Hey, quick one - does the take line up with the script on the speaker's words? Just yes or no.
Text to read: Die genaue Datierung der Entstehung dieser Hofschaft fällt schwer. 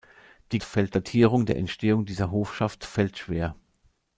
no